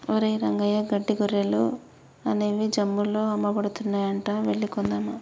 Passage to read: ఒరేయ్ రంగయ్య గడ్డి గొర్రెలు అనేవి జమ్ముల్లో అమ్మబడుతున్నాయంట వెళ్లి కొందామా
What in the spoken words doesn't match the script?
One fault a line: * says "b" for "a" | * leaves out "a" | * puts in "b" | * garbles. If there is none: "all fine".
all fine